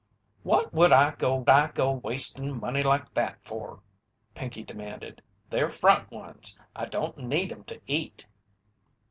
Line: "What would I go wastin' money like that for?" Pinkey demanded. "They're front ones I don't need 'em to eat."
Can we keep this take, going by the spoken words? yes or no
no